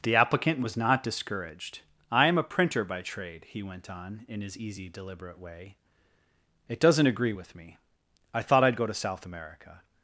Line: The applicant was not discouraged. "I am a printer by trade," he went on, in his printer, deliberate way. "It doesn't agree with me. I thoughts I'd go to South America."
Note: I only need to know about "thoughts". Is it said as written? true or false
false